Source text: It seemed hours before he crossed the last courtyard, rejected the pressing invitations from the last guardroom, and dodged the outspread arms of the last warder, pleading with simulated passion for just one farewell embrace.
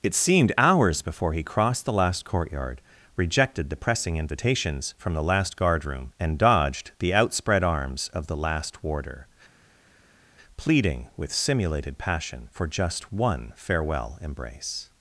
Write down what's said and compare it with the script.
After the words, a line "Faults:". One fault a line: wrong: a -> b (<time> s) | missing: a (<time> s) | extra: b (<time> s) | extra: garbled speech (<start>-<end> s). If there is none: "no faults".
It seemed hours before he crossed the last courtyard, rejected the pressing invitations from the last guardroom, and dodged the outspread arms of the last warder, pleading with simulated passion for just one farewell embrace.
Faults:
no faults